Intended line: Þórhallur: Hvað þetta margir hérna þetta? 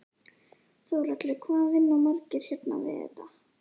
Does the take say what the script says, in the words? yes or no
no